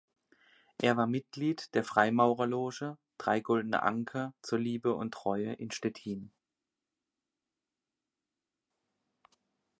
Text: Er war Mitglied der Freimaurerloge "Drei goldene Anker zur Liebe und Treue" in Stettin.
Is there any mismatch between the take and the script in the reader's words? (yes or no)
no